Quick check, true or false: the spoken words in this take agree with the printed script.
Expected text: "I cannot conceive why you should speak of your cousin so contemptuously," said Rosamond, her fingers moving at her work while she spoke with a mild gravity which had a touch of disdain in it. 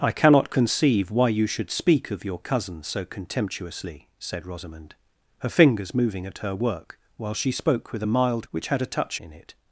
false